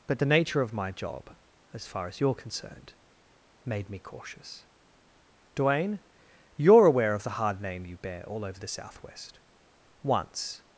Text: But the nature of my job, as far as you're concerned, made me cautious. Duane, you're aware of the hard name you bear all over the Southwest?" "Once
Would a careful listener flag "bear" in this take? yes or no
no